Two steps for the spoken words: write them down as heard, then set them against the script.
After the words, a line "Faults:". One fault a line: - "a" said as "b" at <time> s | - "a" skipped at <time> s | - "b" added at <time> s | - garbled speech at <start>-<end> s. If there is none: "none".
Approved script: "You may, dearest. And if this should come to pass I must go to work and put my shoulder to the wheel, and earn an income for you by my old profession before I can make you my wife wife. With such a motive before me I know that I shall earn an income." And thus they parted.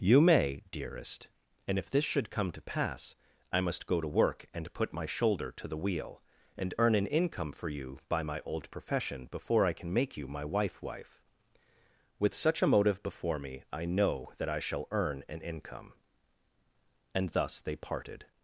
"You may, dearest. And if this should come to pass I must go to work and put my shoulder to the wheel, and earn an income for you by my old profession before I can make you my wife wife. With such a motive before me I know that I shall earn an income." And thus they parted.
Faults:
none